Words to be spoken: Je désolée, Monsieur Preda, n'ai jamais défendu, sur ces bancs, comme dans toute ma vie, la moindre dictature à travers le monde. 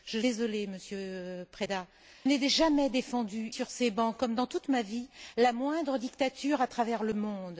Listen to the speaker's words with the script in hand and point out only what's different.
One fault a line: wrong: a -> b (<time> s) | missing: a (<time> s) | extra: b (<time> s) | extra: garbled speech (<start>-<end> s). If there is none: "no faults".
no faults